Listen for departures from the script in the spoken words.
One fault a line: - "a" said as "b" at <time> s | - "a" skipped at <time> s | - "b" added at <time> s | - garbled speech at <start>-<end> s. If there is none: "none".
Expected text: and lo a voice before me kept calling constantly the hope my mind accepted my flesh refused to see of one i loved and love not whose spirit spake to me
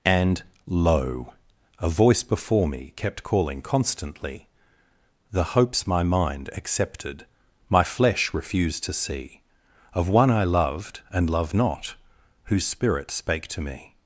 - "hope" said as "hopes" at 5.5 s
- "love" said as "loved" at 11.3 s